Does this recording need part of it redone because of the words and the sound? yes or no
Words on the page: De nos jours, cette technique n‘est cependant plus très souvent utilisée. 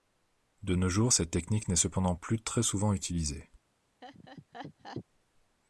yes